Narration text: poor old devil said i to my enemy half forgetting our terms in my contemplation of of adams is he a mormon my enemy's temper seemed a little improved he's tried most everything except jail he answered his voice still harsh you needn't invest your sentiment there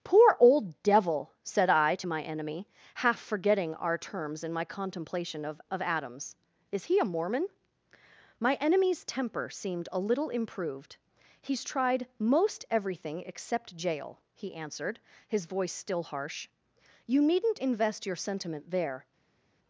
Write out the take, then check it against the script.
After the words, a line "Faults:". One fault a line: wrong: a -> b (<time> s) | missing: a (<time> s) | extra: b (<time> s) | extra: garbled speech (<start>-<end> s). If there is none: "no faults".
poor old devil said i to my enemy half forgetting our terms in my contemplation of of adams is he a mormon my enemy's temper seemed a little improved he's tried most everything except jail he answered his voice still harsh you needn't invest your sentiment there
Faults:
no faults